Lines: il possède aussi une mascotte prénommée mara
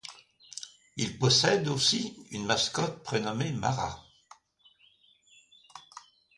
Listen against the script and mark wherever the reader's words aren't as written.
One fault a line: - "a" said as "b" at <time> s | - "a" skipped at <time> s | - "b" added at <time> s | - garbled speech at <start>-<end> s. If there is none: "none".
none